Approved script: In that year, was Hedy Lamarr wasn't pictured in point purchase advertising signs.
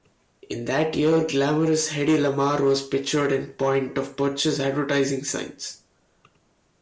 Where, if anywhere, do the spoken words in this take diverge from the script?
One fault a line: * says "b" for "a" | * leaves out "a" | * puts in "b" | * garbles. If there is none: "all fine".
* says "glamorous" for "was"
* says "was" for "wasn't"
* puts in "of"